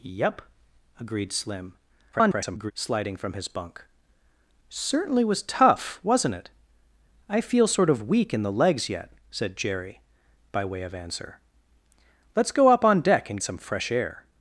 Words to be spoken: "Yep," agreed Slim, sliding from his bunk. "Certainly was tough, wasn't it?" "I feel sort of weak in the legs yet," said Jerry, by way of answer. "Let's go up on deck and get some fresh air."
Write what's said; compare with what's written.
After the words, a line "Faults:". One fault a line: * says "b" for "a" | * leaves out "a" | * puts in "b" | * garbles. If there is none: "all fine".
"Yep," agreed Slim, [garbled] sliding from his bunk. "Certainly was tough, wasn't it?" "I feel sort of weak in the legs yet," said Jerry, by way of answer. "Let's go up on deck and some fresh air."
Faults:
* garbles
* leaves out "get"